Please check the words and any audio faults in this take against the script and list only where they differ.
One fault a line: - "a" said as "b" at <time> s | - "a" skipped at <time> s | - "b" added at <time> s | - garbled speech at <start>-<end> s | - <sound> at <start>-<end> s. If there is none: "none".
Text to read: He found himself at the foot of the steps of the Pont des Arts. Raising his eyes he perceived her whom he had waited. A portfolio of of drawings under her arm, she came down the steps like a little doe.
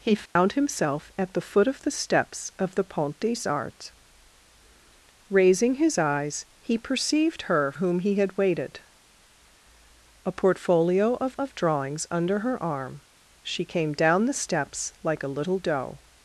- dropout at 0.3-0.4 s